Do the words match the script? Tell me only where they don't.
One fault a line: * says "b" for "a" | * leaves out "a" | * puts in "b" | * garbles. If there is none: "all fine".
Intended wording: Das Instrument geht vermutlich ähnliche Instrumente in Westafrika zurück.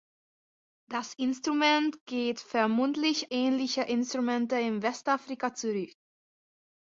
all fine